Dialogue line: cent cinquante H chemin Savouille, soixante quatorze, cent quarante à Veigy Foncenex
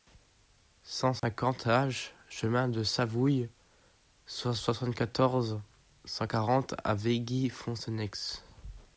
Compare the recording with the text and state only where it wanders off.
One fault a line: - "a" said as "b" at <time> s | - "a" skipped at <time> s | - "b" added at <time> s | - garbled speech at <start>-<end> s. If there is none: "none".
- "de" added at 2.7 s